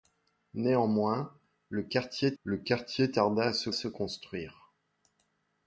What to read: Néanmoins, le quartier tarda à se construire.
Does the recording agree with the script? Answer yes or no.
no